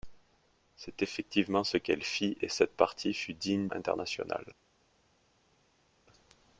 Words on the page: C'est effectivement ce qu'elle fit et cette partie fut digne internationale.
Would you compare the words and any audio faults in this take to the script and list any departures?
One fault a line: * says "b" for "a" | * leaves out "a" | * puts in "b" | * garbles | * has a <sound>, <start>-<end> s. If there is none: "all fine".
all fine